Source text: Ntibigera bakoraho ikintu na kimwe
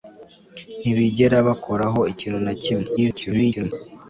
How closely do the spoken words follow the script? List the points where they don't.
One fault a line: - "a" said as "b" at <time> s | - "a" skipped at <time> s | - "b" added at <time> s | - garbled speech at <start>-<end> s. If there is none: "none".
- garbled speech at 3.0-3.7 s